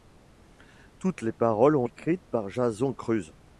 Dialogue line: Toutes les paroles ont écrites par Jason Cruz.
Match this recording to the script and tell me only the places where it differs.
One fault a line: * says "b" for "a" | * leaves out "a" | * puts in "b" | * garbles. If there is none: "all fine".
all fine